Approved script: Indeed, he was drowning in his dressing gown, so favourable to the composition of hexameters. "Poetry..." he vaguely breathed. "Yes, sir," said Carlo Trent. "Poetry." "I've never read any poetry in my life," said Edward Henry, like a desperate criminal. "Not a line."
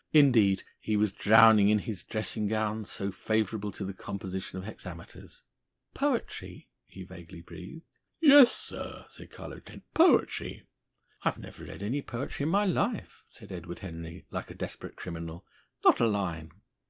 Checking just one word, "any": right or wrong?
right